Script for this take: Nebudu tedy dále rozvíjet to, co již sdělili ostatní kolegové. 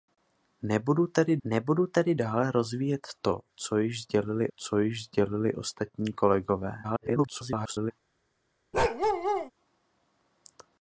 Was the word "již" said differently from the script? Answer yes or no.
no